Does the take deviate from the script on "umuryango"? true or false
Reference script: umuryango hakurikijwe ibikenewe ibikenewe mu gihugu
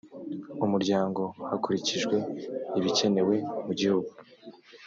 false